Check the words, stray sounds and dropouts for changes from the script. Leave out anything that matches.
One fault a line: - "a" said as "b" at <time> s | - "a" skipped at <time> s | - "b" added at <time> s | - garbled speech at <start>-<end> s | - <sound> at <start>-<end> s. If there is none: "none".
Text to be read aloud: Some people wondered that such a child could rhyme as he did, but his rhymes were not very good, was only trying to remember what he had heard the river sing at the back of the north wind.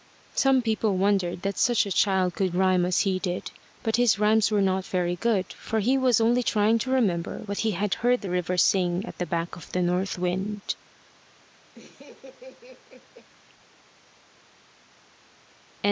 - "for he" added at 5.5 s
- laugh at 11.7-13.3 s